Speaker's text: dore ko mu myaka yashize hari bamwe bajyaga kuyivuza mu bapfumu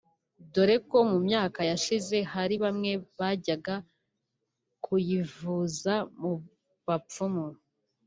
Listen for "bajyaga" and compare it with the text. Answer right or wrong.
right